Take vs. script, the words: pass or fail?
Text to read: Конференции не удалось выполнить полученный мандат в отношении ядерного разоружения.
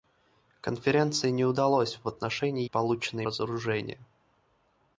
fail